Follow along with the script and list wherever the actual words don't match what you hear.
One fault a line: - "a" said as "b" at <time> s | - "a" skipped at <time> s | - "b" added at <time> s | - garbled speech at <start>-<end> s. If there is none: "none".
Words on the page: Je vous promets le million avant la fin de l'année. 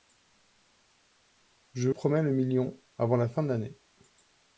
- "vous" skipped at 1.9 s